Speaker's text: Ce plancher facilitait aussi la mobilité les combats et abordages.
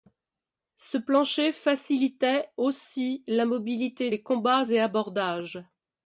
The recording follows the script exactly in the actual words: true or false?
true